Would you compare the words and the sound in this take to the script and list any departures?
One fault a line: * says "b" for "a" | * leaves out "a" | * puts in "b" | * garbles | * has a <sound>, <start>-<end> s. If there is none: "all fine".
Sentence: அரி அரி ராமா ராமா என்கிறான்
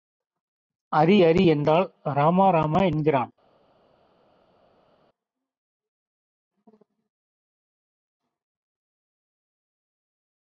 * puts in "என்றால்"